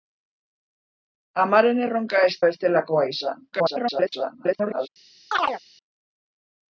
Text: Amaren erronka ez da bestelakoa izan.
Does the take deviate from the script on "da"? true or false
true